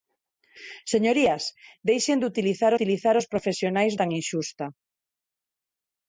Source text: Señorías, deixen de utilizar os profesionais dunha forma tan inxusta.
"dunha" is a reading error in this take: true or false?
true